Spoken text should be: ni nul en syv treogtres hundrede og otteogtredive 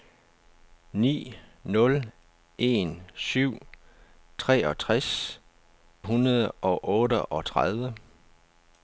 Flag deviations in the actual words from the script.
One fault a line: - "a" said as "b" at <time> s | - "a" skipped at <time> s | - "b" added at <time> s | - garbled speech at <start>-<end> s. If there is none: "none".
none